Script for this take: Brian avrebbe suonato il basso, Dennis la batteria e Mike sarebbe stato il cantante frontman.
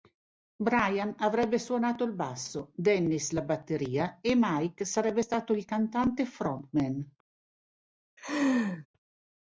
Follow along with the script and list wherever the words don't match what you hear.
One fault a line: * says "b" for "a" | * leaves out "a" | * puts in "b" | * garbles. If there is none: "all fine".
all fine